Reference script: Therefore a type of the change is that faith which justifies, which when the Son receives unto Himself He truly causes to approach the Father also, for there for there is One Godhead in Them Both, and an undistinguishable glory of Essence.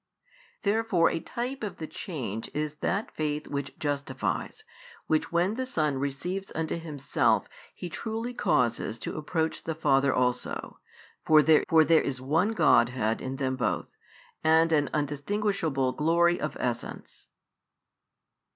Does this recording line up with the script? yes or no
yes